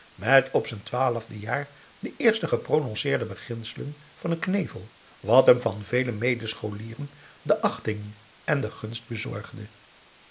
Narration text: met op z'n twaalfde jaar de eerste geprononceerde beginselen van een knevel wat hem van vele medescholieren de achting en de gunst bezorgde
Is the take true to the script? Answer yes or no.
yes